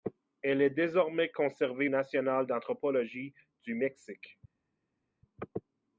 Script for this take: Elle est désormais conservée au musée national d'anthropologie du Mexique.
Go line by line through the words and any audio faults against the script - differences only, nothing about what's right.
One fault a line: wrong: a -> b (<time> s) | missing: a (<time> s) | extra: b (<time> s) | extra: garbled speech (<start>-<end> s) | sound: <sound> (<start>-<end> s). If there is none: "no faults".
missing: au musée (1.9 s)